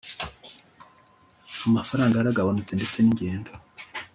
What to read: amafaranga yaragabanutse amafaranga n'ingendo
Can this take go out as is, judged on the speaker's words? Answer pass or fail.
fail